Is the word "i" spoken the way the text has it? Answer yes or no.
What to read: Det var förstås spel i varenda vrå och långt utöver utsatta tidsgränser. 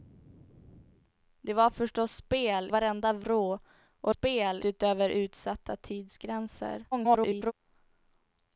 no